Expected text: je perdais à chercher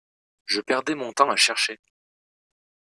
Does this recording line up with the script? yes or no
no